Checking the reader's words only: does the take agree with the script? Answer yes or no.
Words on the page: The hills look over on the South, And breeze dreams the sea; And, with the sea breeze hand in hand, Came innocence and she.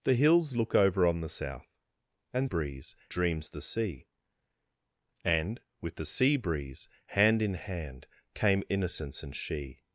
yes